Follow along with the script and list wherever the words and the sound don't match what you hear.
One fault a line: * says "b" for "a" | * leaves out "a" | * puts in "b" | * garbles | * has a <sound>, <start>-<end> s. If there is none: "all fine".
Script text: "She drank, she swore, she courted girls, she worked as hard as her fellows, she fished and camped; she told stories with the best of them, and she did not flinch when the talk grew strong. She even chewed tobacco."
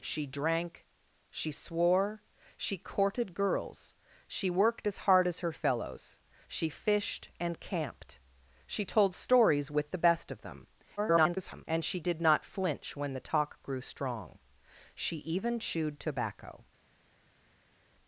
* garbles